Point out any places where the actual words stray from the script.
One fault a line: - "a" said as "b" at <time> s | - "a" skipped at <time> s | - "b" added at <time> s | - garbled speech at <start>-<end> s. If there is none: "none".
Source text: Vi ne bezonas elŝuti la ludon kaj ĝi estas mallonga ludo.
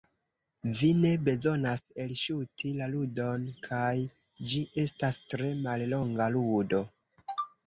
- "tre" added at 5.3 s